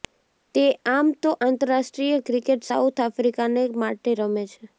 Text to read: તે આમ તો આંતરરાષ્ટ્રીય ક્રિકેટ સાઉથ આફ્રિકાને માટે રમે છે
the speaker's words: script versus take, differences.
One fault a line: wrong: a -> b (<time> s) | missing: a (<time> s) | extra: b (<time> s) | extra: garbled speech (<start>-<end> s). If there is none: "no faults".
no faults